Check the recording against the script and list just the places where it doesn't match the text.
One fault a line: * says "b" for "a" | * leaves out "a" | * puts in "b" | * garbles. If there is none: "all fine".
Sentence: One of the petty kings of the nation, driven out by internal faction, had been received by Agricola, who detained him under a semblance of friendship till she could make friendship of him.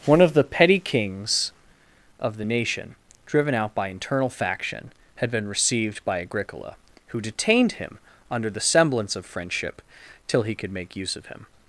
* says "the" for "a"
* says "he" for "she"
* says "use" for "friendship"